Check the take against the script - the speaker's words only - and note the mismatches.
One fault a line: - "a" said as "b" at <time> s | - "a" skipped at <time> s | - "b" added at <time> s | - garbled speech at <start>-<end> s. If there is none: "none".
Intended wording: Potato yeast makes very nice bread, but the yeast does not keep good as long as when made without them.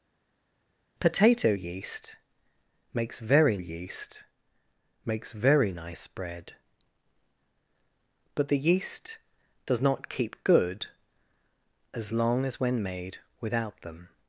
- "yeast makes very" added at 3.6 s